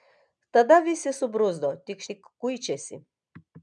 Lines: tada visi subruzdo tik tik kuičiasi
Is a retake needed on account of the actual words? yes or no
no